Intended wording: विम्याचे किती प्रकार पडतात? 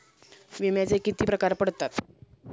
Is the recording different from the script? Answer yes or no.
no